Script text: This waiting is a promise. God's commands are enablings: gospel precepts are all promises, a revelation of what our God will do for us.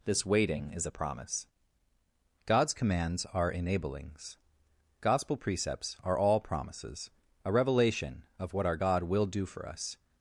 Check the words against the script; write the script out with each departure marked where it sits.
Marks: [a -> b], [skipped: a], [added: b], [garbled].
This waiting is a promise. God's commands are enablings: gospel precepts are all promises, a revelation of what our God will do for us.